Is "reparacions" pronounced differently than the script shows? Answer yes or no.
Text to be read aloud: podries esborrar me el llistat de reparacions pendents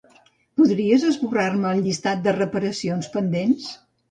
no